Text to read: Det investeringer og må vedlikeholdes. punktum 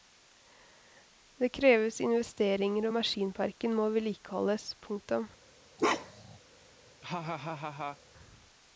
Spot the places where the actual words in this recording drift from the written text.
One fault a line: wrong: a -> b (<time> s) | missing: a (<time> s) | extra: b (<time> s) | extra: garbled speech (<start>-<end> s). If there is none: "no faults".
extra: kreves (1.6 s)
extra: maskinparken (3.0 s)